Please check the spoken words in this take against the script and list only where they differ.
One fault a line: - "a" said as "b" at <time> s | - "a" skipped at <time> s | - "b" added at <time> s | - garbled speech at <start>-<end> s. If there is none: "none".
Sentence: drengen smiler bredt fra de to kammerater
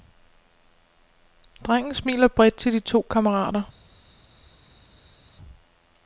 - "fra" said as "til" at 2.5 s